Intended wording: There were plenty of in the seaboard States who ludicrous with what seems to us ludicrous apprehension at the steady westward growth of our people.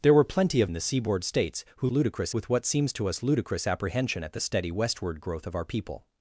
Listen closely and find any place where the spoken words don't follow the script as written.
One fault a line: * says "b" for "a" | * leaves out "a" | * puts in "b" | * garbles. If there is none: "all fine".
all fine